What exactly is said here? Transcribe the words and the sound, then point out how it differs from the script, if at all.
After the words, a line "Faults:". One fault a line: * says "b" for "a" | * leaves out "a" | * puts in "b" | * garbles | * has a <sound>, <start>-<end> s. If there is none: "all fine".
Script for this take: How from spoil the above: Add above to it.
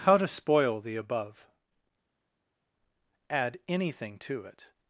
How to spoil the above: Add anything to it.
Faults:
* says "to" for "from"
* says "anything" for "above"